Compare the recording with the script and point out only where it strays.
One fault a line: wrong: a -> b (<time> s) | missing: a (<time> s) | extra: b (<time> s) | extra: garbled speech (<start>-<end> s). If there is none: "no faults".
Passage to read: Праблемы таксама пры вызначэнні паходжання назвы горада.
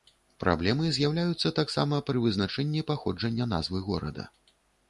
extra: з'яўляюцца (0.9 s)